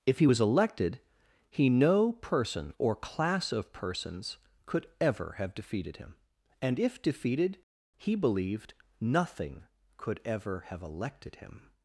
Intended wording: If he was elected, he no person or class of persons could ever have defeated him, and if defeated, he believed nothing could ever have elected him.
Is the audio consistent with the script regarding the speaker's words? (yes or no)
yes